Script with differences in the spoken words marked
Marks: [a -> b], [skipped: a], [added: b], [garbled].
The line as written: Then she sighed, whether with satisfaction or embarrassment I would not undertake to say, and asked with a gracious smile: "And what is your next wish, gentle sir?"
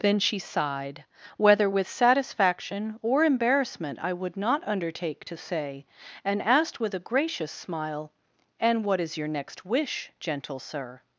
Then she sighed, whether with satisfaction or embarrassment I would not undertake to say, and asked with a gracious smile: "And what is your next wish, gentle sir?"